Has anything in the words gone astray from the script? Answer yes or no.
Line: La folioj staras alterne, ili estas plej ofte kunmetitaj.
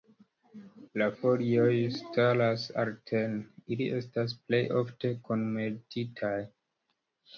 no